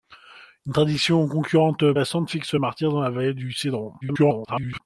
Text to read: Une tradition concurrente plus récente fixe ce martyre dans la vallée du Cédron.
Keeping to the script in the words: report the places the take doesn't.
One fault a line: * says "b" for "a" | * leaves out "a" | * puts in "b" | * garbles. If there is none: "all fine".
* leaves out "plus"
* garbles